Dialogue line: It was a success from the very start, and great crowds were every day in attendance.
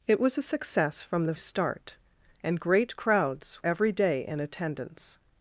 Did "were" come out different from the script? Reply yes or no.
yes